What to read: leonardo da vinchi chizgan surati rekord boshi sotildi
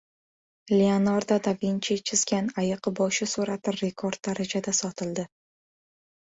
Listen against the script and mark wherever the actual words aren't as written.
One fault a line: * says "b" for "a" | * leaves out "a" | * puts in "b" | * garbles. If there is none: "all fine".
* puts in "ayiq boshi"
* says "darajada" for "boshi"